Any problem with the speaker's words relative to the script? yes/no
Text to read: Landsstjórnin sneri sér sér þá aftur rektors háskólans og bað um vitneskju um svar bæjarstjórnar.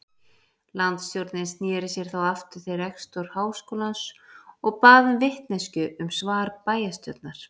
yes